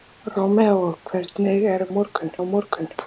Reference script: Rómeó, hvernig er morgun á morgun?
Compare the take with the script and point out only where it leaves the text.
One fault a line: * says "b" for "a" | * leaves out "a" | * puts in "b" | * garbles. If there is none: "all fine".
all fine